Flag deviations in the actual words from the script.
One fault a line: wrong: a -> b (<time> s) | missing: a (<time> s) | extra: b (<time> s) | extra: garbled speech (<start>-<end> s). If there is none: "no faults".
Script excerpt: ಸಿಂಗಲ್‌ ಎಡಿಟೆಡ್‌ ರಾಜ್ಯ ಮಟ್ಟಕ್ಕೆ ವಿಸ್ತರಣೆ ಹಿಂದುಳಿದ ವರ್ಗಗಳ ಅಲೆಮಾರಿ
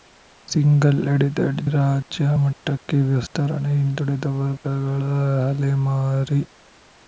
no faults